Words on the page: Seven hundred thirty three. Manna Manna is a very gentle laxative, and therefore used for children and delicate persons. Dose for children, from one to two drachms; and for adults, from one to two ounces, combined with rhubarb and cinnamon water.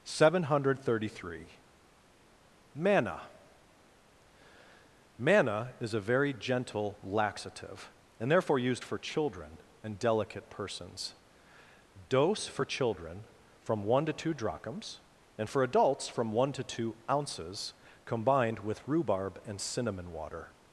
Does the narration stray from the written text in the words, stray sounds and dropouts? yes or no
no